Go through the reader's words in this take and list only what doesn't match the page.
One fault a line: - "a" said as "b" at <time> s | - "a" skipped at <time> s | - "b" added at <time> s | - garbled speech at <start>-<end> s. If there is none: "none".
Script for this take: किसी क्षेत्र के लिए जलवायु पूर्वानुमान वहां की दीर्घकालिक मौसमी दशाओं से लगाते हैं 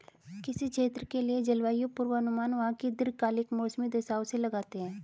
none